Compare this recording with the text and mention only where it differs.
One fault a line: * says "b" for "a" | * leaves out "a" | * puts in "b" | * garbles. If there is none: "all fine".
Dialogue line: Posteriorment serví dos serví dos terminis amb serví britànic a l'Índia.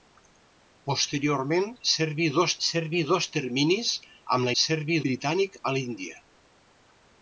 all fine